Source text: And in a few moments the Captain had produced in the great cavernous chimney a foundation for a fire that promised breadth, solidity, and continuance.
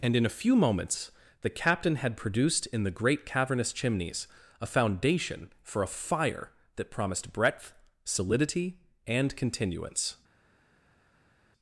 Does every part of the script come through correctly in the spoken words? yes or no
no